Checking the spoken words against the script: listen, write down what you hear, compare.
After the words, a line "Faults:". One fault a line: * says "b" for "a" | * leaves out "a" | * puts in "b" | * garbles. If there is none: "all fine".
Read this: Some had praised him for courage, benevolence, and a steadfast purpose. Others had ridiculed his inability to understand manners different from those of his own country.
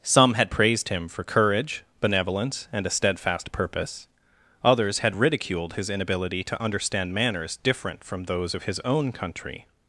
Some had praised him for courage, benevolence, and a steadfast purpose. Others had ridiculed his inability to understand manners different from those of his own country.
Faults:
all fine